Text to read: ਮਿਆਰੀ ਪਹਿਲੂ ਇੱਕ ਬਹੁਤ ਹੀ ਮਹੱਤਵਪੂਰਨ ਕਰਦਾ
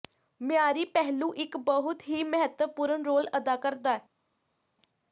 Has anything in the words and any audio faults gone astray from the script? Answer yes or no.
yes